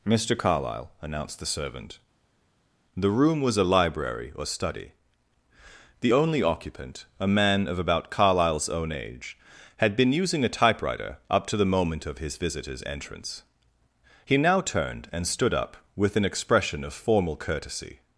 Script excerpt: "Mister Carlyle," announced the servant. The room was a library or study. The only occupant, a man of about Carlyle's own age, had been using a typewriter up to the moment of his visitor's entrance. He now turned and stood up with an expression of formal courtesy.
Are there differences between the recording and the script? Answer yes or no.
no